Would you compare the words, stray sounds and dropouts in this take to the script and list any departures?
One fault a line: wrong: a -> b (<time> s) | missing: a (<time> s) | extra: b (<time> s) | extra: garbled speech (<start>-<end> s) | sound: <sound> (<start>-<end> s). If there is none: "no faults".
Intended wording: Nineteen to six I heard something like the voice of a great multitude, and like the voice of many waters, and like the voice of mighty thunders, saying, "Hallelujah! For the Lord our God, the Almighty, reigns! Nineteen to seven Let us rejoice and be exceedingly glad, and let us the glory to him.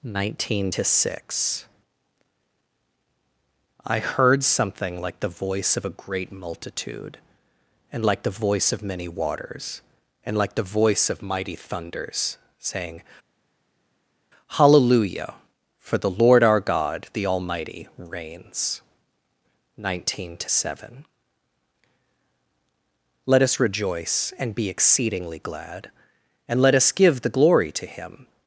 extra: give (26.9 s)